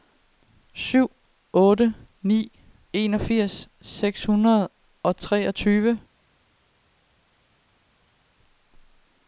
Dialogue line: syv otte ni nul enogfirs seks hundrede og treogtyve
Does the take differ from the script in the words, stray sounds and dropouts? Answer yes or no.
yes